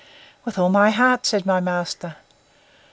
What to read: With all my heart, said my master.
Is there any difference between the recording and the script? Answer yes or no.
no